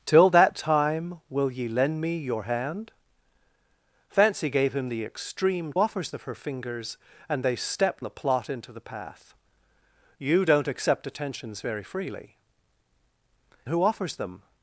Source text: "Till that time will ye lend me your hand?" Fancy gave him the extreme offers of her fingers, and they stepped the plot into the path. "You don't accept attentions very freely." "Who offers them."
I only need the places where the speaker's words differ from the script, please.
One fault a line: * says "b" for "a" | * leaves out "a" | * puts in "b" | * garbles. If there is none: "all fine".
all fine